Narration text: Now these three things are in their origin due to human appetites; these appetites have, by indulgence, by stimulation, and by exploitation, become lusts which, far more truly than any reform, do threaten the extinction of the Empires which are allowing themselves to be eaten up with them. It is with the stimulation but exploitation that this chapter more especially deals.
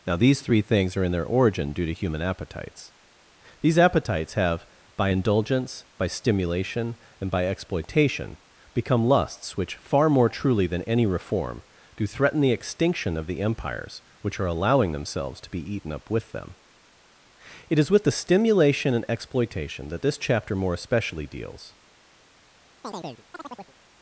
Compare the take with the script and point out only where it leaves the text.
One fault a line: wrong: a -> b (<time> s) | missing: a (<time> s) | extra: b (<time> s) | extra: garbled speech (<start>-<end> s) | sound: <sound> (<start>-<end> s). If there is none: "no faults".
wrong: but -> and (18.9 s)
sound: chirp (22.8-23.7 s)